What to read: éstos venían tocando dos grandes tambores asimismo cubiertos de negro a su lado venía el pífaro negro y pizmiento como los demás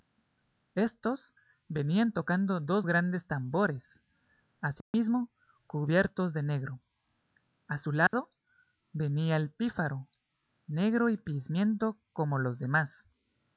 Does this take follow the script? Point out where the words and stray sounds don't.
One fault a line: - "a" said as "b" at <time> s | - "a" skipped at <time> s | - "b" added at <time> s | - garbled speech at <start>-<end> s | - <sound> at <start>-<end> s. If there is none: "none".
- dropout at 4.8-4.9 s
- dropout at 8.1-8.1 s